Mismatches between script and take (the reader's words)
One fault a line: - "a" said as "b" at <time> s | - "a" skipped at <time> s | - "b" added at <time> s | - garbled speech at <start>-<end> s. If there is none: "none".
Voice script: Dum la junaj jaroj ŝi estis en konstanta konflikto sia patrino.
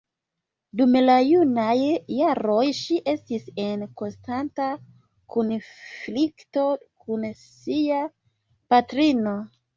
- "kun" added at 7.1 s